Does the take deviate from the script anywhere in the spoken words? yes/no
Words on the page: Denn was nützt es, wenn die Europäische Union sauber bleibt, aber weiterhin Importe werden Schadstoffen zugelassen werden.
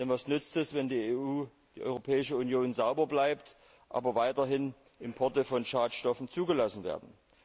yes